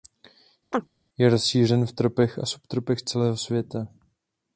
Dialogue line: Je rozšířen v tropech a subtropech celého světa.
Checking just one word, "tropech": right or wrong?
right